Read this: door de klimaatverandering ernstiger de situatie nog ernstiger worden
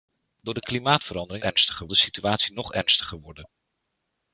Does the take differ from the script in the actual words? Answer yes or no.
no